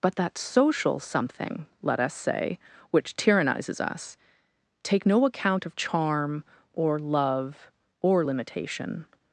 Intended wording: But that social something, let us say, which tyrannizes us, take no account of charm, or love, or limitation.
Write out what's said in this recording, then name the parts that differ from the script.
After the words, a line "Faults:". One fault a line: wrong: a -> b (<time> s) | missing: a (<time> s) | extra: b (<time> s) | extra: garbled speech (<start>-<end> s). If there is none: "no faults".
But that social something, let us say, which tyrannizes us, take no account of charm, or love, or limitation.
Faults:
no faults